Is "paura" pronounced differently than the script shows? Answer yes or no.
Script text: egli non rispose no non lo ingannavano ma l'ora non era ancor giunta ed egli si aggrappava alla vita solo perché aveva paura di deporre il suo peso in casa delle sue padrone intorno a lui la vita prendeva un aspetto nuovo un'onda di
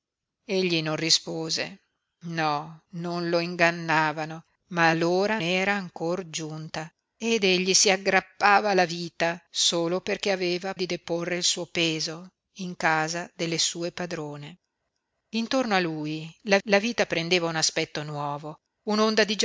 yes